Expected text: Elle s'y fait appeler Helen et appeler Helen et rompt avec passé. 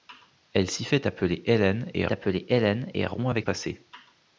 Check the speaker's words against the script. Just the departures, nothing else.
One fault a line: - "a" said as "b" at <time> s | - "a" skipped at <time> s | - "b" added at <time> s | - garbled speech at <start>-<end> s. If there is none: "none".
none